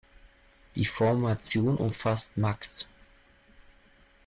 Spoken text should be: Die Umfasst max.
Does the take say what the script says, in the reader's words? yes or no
no